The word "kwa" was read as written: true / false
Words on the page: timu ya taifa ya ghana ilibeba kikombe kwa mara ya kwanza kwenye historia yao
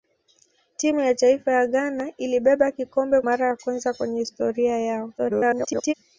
false